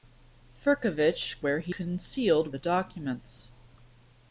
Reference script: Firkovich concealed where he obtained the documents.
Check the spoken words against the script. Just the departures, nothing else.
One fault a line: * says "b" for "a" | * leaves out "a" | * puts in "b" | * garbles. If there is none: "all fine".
* leaves out "concealed"
* says "concealed" for "obtained"